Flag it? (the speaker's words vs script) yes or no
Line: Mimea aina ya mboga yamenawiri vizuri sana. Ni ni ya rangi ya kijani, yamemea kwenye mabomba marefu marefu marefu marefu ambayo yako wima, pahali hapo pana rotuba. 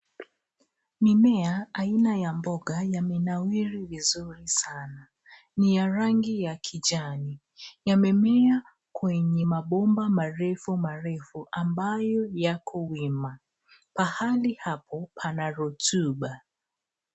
yes